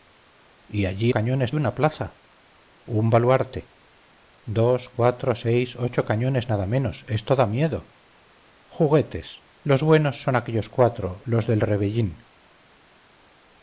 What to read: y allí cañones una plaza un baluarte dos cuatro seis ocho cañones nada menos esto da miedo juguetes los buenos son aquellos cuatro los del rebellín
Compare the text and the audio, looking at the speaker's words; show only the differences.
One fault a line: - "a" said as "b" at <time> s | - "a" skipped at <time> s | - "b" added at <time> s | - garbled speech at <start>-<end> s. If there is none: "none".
none